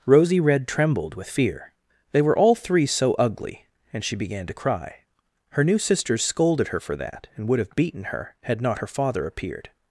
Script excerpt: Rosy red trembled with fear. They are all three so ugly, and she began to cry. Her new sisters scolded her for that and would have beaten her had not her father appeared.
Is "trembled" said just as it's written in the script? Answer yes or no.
yes